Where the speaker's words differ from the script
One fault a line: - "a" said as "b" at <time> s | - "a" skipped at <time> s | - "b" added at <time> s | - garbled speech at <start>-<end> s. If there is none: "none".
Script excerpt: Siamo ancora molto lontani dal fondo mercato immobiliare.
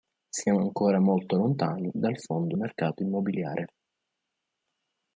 none